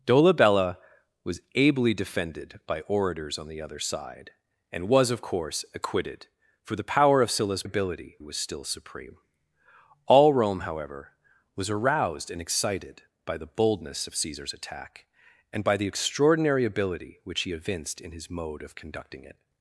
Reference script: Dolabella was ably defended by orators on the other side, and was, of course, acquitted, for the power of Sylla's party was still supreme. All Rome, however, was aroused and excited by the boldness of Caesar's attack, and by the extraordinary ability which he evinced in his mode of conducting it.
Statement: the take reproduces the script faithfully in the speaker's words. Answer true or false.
false